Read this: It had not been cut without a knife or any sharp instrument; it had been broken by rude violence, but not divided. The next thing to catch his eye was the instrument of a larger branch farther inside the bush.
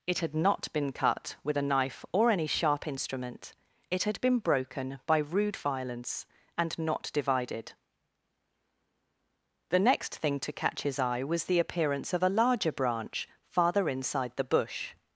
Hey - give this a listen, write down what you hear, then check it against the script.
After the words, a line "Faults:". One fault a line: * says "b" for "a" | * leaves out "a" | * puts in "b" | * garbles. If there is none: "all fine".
It had not been cut with a knife or any sharp instrument; it had been broken by rude violence, and not divided. The next thing to catch his eye was the appearance of a larger branch farther inside the bush.
Faults:
* says "with" for "without"
* says "and" for "but"
* says "appearance" for "instrument"